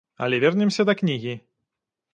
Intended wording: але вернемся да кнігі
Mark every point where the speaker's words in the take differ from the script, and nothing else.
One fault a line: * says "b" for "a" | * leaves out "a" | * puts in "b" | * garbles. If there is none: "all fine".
all fine